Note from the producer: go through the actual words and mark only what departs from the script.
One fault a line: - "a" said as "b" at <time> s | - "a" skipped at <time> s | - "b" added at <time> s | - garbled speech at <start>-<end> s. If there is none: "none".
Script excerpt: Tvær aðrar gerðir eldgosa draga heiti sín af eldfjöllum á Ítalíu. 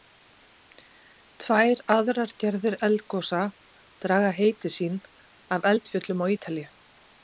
none